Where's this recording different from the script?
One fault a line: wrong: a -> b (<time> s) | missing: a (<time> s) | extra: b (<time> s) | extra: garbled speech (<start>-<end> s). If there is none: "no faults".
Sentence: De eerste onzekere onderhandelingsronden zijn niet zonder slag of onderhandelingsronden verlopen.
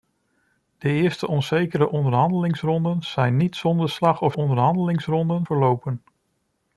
no faults